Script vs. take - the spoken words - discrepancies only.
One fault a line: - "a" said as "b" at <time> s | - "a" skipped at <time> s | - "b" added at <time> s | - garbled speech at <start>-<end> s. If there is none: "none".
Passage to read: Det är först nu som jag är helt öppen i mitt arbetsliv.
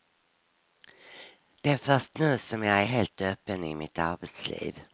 none